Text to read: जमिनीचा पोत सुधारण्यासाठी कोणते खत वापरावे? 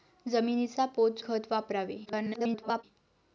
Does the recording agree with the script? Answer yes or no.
no